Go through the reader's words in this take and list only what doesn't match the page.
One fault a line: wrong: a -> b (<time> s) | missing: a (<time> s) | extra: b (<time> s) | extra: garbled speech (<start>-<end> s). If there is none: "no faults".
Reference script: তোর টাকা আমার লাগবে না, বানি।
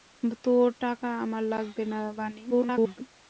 extra: garbled speech (2.5-3.0 s)